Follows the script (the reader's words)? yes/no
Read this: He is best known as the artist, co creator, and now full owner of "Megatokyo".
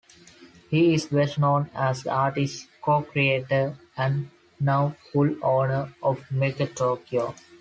yes